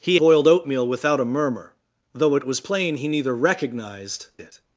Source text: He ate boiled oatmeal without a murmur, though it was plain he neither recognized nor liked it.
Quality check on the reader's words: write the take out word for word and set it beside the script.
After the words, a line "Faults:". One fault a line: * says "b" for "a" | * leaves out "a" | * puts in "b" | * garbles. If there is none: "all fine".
He boiled oatmeal without a murmur, though it was plain he neither recognized it.
Faults:
* leaves out "ate"
* leaves out "nor liked"